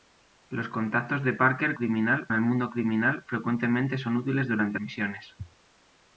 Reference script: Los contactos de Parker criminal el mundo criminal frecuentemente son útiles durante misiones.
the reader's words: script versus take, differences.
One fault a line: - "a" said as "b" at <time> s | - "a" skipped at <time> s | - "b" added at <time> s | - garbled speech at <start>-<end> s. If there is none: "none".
none